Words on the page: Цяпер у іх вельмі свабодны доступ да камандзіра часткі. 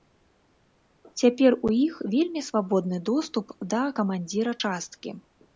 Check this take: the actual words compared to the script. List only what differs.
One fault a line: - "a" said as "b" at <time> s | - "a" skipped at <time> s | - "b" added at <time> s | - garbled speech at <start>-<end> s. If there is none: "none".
none